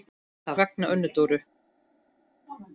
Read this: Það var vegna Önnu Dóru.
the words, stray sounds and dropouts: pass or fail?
fail